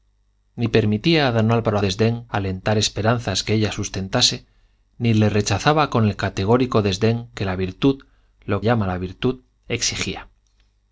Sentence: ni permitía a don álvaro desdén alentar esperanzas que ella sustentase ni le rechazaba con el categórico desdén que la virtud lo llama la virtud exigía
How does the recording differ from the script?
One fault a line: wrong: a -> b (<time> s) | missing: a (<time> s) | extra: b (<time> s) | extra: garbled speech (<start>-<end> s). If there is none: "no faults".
no faults